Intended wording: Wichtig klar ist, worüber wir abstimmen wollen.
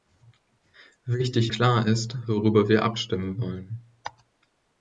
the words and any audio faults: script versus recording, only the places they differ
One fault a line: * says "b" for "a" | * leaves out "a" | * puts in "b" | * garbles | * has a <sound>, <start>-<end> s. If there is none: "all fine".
all fine